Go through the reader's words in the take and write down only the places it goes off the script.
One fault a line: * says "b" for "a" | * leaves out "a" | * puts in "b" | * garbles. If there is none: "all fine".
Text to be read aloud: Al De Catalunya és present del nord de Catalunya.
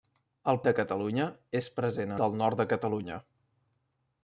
all fine